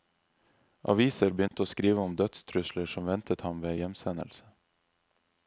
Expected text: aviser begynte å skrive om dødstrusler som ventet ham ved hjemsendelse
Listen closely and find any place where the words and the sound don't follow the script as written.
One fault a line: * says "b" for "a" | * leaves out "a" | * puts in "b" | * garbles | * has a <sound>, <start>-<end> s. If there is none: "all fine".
* has a dropout, 1.5-1.5 s